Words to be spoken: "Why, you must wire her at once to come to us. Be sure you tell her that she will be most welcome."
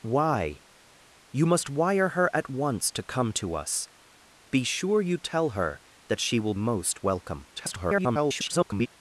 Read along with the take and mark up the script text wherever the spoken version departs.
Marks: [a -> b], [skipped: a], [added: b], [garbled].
"Why, you must wire her at once to come to us. Be sure you tell her that she will [skipped: be] most welcome." [garbled]